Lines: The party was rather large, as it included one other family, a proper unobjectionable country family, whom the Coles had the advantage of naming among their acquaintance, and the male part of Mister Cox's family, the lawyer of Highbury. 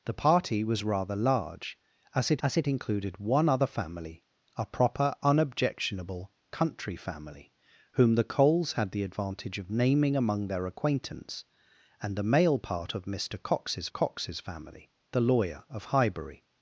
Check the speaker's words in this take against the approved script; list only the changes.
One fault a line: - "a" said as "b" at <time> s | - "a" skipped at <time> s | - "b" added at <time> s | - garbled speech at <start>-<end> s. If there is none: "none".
- "as it" added at 2.4 s
- "Cox's" added at 13.9 s